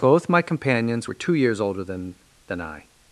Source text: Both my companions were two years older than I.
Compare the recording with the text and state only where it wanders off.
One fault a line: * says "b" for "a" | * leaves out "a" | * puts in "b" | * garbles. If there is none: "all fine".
* puts in "than"